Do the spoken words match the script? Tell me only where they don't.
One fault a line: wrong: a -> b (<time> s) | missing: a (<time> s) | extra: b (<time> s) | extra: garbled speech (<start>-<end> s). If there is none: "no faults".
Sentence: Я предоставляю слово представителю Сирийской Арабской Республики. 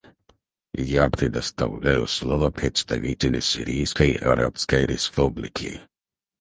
no faults